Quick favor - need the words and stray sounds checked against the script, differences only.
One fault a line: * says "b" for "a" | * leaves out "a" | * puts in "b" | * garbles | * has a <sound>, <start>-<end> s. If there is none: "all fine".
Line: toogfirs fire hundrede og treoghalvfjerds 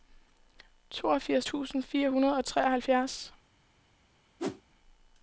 * puts in "tusind"
* has a whoosh, 4.4-4.6 s